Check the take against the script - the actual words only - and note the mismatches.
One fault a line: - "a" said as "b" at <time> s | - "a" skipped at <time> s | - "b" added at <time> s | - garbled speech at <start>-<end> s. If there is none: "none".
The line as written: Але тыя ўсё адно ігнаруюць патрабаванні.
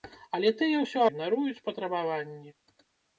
- "адно" skipped at 1.0 s